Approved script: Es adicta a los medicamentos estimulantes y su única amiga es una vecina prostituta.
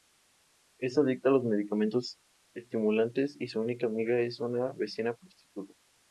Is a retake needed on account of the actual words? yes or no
no